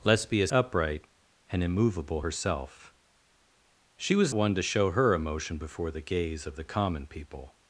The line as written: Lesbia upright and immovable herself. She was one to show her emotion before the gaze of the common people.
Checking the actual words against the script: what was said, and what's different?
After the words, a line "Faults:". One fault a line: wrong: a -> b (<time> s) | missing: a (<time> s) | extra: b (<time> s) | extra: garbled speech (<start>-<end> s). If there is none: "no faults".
Lesbia upright and immovable herself. She was one to show her emotion before the gaze of the common people.
Faults:
no faults